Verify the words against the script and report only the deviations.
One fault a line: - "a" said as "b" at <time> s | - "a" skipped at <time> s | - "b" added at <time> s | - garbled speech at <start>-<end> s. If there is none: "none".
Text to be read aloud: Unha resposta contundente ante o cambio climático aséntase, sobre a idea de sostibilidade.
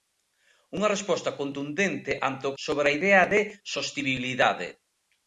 - "cambio climático aséntase" skipped at 2.5 s